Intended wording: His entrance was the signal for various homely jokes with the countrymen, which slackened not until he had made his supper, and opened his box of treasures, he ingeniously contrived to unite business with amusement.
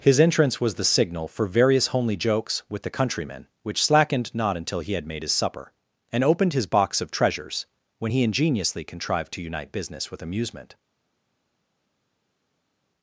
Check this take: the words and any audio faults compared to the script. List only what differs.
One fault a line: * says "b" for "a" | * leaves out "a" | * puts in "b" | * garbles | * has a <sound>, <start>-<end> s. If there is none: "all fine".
* puts in "when"